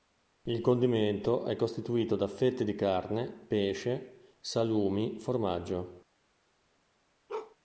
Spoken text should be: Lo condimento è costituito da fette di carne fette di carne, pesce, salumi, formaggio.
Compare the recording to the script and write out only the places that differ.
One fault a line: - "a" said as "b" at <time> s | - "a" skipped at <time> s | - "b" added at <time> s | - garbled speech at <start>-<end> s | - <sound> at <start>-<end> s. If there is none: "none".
- "Lo" said as "Il" at 0.5 s
- "fette di carne" skipped at 3.3 s
- bark at 7.3-7.6 s